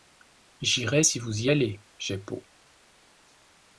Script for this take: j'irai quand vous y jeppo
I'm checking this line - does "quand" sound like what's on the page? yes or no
no